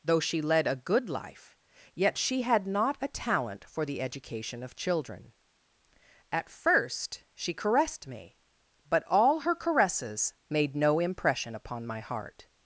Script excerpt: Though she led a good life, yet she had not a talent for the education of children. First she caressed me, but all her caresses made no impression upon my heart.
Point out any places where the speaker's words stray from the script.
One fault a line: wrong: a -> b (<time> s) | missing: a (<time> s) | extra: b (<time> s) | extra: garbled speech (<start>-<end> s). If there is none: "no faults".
extra: At (6.3 s)